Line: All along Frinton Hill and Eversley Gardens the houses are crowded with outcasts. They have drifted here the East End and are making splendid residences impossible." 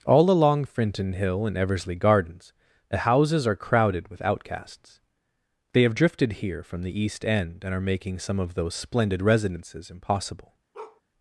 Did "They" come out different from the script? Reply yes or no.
no